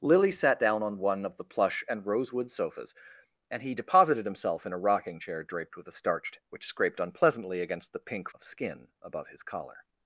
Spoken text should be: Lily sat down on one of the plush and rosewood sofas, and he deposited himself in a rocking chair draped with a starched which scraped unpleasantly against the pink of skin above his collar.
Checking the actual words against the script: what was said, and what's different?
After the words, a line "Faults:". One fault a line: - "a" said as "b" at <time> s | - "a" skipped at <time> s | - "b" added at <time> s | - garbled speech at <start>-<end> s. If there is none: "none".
Lily sat down on one of the plush and rosewood sofas, and he deposited himself in a rocking chair draped with a starched which scraped unpleasantly against the pink of skin above his collar.
Faults:
none